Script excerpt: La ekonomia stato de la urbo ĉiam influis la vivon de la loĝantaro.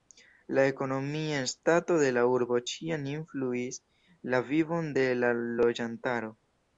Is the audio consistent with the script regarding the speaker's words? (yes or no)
yes